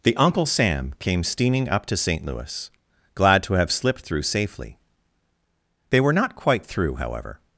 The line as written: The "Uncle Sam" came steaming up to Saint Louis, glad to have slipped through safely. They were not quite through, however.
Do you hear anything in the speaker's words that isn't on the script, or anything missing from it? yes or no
no